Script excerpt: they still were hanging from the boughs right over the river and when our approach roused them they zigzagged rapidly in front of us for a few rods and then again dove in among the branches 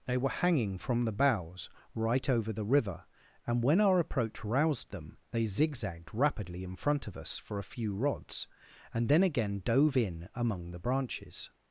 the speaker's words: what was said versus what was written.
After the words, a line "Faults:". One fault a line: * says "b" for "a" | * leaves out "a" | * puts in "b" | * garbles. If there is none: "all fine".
they were hanging from the boughs right over the river and when our approach roused them they zigzagged rapidly in front of us for a few rods and then again dove in among the branches
Faults:
* leaves out "still"